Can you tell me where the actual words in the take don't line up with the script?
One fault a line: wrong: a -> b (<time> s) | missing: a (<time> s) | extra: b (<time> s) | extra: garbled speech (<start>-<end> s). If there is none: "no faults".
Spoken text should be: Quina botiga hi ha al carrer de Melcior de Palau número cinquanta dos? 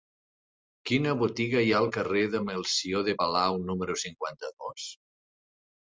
no faults